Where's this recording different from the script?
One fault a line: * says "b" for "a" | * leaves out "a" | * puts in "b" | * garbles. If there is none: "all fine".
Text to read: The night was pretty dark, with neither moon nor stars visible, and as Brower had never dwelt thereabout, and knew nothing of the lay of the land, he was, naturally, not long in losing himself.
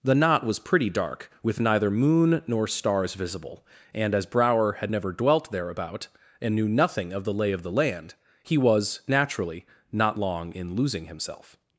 * says "knot" for "night"